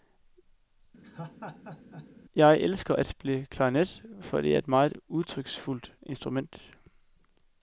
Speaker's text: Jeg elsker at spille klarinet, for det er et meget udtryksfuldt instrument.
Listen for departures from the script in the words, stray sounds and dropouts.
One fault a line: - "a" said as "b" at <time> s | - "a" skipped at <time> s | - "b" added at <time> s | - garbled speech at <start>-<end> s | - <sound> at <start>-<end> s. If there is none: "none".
- laugh at 1.0-2.1 s